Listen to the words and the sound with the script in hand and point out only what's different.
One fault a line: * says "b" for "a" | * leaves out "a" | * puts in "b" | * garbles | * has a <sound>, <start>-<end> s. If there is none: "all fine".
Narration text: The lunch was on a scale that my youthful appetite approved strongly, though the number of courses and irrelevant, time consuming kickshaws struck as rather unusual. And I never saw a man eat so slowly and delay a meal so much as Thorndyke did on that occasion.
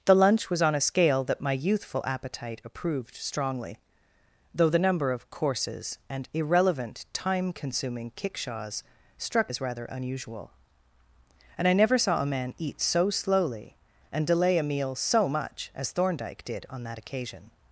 all fine